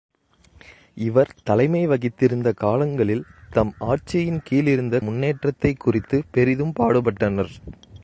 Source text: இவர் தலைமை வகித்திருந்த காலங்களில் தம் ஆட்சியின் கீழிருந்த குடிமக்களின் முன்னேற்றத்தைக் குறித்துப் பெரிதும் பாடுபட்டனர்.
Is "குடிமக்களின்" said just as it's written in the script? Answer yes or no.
no